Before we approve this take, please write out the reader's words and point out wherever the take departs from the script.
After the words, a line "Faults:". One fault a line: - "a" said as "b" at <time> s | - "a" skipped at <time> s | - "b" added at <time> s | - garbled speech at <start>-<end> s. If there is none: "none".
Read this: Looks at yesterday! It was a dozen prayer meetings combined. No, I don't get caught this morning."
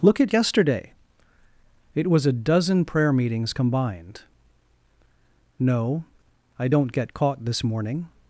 Look at yesterday! It was a dozen prayer meetings combined. No, I don't get caught this morning."
Faults:
- "Looks" said as "Look" at 0.0 s